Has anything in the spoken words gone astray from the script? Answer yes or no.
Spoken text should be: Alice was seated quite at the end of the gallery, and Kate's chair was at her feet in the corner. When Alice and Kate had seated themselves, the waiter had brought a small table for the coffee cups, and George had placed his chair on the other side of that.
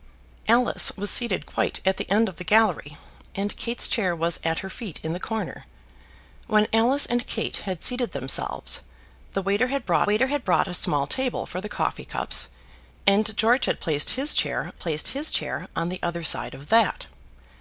yes